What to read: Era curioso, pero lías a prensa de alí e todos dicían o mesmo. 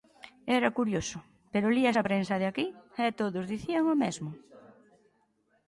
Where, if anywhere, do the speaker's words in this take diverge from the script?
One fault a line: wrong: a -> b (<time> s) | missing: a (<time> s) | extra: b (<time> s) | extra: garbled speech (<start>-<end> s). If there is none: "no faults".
wrong: alí -> aquí (2.5 s)